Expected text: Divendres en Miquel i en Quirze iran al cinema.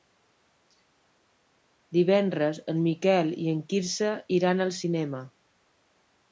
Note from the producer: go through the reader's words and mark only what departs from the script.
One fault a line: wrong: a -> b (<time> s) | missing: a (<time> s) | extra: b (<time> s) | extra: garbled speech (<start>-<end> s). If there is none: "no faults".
no faults